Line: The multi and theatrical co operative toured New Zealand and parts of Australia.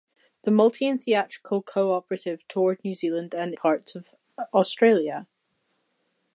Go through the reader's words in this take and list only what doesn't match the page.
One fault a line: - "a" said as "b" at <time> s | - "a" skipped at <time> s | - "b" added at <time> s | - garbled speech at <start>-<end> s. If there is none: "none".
none